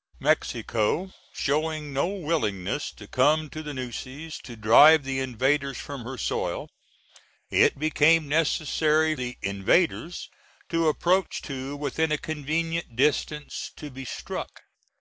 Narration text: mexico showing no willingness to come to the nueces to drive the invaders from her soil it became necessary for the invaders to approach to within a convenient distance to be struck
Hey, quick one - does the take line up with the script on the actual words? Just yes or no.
no